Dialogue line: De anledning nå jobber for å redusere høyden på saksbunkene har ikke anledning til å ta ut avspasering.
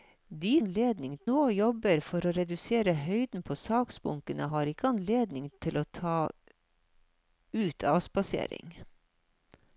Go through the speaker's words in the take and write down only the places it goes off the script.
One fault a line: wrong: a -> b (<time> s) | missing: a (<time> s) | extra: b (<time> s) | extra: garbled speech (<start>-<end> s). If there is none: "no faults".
no faults